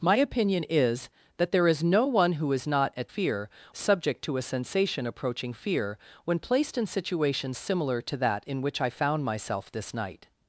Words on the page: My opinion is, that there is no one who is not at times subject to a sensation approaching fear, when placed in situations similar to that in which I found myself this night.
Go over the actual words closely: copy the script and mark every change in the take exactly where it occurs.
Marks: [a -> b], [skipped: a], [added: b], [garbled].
My opinion is, that there is no one who is not at [times -> fear] subject to a sensation approaching fear, when placed in situations similar to that in which I found myself this night.